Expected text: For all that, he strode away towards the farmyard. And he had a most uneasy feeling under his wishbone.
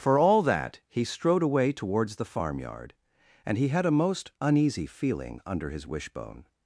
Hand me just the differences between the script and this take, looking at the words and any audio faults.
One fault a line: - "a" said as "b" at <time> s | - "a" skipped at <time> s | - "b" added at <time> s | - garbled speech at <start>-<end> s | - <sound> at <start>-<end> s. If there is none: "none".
none